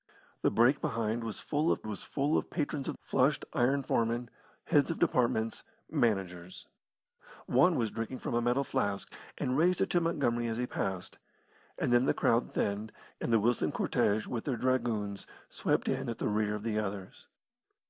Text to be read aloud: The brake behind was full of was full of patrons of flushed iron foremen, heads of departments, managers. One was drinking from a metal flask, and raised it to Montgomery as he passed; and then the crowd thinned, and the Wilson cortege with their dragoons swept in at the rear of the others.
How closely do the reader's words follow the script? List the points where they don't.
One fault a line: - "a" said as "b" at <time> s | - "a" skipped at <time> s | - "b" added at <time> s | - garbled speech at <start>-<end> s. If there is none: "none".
none